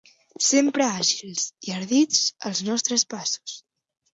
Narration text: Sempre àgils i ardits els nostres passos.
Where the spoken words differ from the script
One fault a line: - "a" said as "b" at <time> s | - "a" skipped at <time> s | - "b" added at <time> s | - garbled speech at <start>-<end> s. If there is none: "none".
none